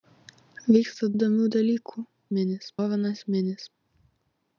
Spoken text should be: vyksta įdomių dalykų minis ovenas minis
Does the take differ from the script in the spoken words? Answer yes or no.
no